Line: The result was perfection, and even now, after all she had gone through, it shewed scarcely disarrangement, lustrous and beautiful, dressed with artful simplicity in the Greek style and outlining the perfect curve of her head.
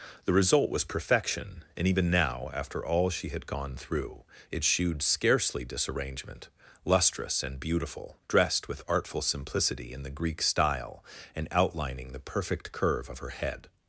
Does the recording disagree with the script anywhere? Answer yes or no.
no